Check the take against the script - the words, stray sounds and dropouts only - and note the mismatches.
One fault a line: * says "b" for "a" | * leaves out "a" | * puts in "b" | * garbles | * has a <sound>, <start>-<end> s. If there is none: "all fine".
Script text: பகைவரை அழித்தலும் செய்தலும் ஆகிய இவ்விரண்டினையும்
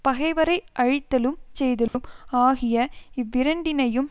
* has a dropout, 1.9-1.9 s